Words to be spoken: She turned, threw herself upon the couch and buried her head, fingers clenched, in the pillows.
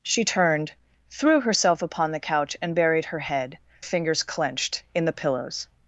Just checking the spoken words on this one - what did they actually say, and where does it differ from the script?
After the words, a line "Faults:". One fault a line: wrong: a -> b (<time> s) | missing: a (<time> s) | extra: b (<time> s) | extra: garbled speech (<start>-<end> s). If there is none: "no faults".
She turned, threw herself upon the couch and buried her head, fingers clenched, in the pillows.
Faults:
no faults